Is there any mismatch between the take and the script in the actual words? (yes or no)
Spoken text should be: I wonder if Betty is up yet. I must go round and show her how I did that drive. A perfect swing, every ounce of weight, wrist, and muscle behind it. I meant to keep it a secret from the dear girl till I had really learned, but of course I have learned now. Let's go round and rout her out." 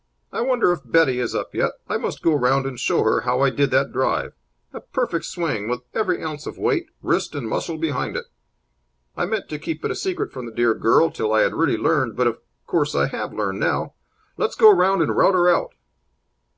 yes